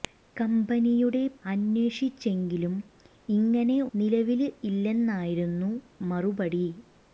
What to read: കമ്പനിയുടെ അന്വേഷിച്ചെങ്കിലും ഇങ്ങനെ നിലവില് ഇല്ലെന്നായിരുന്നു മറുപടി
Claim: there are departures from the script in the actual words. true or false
false